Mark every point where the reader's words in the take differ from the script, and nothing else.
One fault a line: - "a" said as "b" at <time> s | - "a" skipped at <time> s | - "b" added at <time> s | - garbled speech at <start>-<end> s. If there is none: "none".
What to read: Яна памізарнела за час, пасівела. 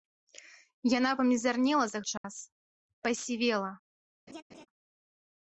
none